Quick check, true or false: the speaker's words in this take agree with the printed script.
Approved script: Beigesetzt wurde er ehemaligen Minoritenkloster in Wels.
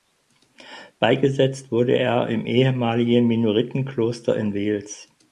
false